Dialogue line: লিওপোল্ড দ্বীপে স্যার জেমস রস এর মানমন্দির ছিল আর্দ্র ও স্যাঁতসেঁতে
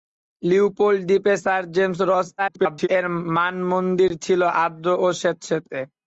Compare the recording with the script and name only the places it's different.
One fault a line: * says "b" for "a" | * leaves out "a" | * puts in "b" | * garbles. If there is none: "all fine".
* garbles